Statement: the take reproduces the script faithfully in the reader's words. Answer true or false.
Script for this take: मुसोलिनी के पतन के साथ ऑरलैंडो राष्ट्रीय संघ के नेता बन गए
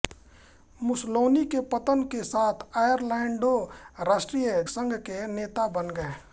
true